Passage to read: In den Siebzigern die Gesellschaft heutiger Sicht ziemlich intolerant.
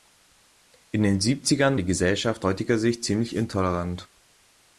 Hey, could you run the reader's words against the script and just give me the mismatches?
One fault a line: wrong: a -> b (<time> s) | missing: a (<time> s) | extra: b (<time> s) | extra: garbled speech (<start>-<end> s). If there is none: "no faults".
no faults